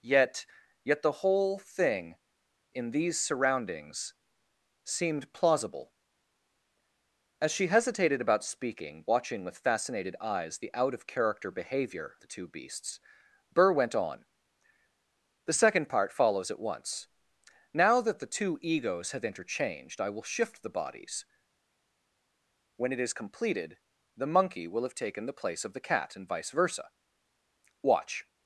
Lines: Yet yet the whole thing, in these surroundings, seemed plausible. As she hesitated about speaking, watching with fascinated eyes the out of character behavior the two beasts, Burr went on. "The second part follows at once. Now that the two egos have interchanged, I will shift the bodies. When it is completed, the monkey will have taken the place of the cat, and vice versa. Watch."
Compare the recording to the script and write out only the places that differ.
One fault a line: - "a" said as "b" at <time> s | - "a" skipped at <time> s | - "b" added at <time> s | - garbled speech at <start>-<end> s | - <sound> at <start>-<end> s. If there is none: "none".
none